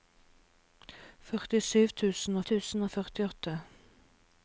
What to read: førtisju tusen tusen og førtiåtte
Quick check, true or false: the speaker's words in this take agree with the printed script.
true